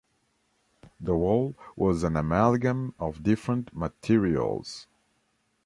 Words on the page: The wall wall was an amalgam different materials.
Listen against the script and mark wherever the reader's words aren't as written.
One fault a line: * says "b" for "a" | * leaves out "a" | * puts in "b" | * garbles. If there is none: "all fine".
* leaves out "wall"
* puts in "of"